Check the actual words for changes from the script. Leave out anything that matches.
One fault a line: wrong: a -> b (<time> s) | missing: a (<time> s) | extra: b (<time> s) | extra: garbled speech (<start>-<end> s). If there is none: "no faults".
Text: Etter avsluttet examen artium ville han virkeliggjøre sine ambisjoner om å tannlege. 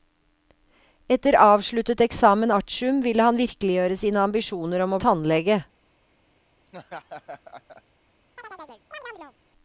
no faults